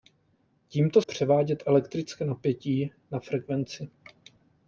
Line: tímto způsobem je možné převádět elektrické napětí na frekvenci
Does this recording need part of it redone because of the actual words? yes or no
yes